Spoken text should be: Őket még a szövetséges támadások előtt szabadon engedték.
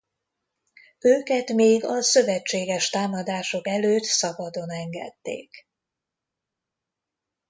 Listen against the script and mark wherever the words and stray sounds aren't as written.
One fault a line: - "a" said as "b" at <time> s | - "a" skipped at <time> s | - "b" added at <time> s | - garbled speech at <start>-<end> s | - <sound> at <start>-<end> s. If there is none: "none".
none